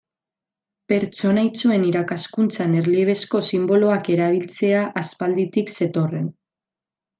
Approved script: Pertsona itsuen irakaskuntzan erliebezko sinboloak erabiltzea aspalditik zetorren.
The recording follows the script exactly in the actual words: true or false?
true